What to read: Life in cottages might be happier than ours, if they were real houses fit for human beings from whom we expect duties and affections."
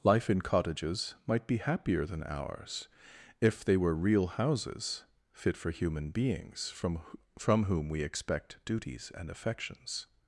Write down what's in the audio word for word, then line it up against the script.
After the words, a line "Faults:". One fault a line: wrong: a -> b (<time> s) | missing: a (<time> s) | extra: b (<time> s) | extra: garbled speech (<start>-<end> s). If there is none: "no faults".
Life in cottages might be happier than ours, if they were real houses fit for human beings from from whom we expect duties and affections."
Faults:
extra: from (7.4 s)